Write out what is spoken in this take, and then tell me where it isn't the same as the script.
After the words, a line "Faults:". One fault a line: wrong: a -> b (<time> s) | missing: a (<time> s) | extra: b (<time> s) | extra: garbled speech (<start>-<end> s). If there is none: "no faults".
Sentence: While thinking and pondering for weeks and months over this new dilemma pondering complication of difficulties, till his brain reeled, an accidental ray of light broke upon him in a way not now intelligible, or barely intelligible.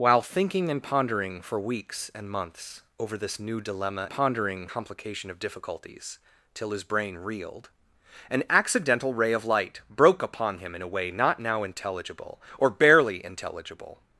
While thinking and pondering for weeks and months over this new dilemma pondering complication of difficulties, till his brain reeled, an accidental ray of light broke upon him in a way not now intelligible, or barely intelligible.
Faults:
no faults